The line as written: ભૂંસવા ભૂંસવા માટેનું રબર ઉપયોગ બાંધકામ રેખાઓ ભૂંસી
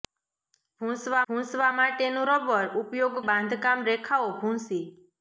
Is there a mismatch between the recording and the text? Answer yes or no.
no